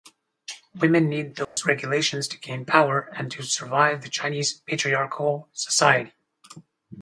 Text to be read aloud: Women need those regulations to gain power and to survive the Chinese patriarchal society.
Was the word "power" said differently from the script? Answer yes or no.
no